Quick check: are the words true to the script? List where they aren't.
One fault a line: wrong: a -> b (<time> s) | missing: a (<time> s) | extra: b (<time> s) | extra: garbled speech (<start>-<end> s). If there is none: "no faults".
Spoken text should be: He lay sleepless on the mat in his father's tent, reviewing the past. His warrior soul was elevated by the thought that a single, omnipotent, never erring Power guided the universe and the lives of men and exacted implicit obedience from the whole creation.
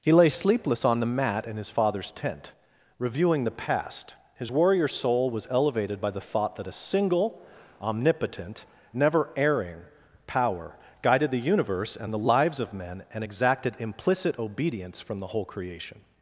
no faults